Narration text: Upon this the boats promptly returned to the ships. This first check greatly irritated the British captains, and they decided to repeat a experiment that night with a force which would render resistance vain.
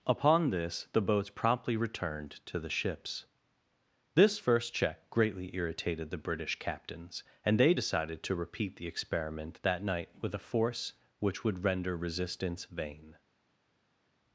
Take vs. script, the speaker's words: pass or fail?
fail